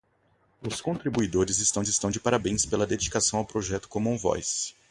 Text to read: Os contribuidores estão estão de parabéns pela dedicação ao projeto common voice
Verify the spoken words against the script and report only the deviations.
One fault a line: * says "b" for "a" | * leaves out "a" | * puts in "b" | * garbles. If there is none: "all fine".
all fine